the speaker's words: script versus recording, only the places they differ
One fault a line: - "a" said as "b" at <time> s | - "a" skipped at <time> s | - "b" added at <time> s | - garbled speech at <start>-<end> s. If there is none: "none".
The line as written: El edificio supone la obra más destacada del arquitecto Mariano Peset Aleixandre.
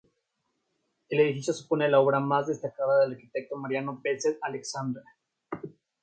none